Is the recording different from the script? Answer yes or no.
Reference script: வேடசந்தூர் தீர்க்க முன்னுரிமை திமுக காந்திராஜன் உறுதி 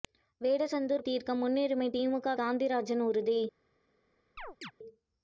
no